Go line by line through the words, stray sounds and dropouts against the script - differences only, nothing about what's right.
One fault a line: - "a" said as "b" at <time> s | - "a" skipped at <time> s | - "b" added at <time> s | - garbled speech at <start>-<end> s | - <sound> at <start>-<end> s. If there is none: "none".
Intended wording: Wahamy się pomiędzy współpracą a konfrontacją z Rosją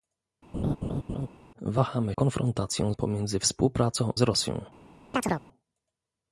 - laugh at 0.5-1.3 s
- "się" said as "konfrontacją" at 2.1 s
- "a konfrontacją" skipped at 4.1 s
- chirp at 5.1-5.4 s